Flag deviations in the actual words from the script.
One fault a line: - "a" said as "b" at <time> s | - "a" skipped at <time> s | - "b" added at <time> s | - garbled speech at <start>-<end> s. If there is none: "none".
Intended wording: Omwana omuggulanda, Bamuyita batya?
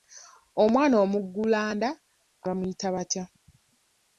none